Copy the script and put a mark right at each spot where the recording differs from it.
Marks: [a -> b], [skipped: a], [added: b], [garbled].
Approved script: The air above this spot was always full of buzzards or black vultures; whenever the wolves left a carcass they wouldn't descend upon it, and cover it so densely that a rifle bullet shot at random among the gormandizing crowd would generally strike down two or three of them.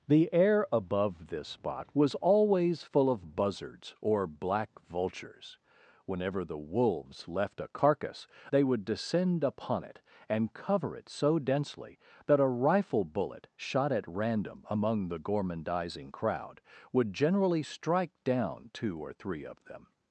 The air above this spot was always full of buzzards or black vultures; whenever the wolves left a carcass they [wouldn't -> would] descend upon it, and cover it so densely that a rifle bullet shot at random among the gormandizing crowd would generally strike down two or three of them.